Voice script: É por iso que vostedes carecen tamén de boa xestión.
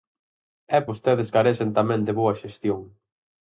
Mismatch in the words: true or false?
true